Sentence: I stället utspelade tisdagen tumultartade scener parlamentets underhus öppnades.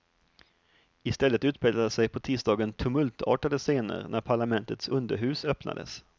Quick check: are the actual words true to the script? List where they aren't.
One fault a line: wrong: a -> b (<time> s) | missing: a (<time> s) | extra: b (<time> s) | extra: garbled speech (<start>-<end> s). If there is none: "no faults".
extra: sig på (1.9 s)
extra: när (4.1 s)